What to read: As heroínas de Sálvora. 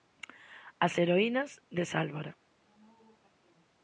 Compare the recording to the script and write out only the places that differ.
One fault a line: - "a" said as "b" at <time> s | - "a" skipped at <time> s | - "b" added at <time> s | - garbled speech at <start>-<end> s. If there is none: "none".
none